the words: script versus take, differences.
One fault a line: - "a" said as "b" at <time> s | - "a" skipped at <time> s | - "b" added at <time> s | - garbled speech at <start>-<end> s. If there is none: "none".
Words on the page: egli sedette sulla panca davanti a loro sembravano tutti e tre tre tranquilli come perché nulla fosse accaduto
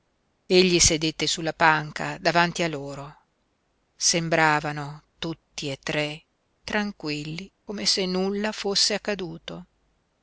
- "tre" skipped at 6.2 s
- "perché" said as "se" at 7.8 s